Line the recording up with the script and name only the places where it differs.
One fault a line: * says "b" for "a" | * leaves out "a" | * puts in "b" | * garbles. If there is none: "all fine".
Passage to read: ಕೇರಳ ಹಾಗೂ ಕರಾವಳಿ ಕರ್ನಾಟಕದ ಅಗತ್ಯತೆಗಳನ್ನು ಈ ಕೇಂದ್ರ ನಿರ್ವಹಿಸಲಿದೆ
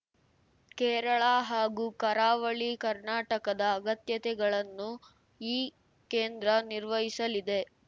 all fine